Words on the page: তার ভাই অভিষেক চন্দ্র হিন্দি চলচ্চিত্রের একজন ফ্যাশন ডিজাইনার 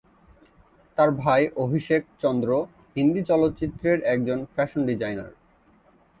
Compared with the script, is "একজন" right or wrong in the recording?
right